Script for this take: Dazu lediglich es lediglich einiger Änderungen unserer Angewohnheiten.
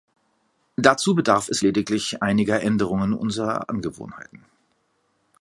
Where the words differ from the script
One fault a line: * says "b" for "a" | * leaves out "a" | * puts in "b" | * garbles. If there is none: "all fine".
* says "bedarf" for "lediglich"